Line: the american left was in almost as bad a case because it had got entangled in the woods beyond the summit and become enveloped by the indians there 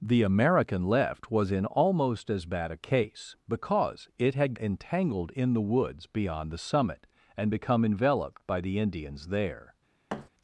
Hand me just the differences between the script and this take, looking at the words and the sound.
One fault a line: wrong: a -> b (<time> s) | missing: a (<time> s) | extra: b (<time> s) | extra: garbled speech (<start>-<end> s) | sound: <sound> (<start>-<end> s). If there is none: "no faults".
missing: got (4.5 s)
sound: thud (10.1-10.3 s)